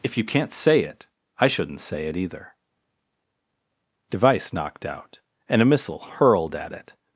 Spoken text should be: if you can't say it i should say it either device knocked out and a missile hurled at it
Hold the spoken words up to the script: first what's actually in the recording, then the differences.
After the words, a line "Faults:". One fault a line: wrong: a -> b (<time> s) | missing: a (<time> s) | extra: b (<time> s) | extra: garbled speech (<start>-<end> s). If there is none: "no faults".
if you can't say it i shouldn't say it either device knocked out and a missile hurled at it
Faults:
wrong: should -> shouldn't (1.5 s)